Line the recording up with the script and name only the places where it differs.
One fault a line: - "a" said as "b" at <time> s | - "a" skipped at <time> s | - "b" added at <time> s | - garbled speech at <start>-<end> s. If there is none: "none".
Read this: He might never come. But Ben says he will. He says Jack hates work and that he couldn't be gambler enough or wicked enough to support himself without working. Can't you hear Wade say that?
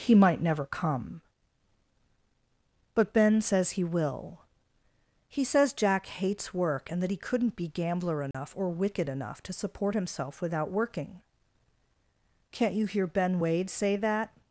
- "Ben" added at 13.1 s